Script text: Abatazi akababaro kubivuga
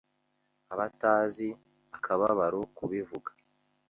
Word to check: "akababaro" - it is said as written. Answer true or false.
true